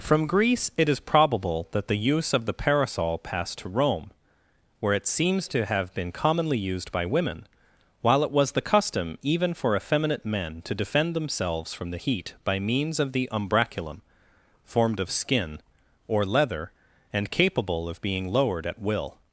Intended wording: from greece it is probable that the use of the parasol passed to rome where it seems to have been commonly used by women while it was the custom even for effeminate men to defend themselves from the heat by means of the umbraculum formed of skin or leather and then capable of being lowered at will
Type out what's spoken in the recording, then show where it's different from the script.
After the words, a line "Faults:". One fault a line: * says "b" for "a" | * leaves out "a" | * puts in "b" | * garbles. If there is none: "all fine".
from greece it is probable that the use of the parasol passed to rome where it seems to have been commonly used by women while it was the custom even for effeminate men to defend themselves from the heat by means of the umbraculum formed of skin or leather and capable of being lowered at will
Faults:
* leaves out "then"